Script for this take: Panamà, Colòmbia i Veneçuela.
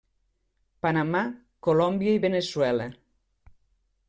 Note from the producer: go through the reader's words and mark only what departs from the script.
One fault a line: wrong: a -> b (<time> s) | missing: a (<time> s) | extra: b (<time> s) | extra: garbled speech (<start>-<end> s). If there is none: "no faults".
no faults